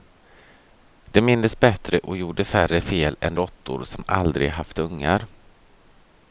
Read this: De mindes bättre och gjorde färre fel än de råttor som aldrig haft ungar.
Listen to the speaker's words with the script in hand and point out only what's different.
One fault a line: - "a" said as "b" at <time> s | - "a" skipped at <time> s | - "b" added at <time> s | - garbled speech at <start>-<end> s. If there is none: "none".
- "de" skipped at 3.4 s